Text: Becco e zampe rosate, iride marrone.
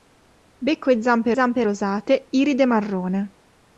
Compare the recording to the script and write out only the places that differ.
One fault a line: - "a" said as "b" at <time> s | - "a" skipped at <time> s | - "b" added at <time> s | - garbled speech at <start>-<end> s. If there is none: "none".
- "zampe" added at 1.3 s